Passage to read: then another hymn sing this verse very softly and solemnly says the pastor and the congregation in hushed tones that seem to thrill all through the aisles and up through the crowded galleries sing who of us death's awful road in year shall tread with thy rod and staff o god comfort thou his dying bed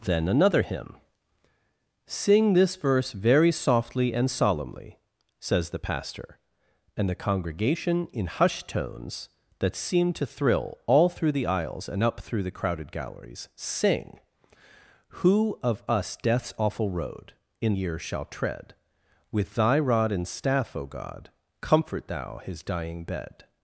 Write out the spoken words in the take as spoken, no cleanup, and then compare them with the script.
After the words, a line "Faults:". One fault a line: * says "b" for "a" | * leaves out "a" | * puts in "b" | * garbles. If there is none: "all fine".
then another hymn sing this verse very softly and solemnly says the pastor and the congregation in hushed tones that seem to thrill all through the aisles and up through the crowded galleries sing who of us death's awful road in year shall tread with thy rod and staff o god comfort thou his dying bed
Faults:
all fine